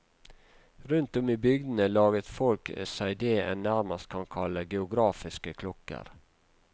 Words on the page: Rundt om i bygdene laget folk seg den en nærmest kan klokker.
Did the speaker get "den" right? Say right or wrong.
wrong